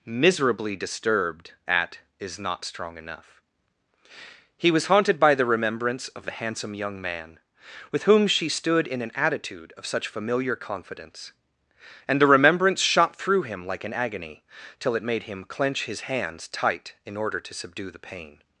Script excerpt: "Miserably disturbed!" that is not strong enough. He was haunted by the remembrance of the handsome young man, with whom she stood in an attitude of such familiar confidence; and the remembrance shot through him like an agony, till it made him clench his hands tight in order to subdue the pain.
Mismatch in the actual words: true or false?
true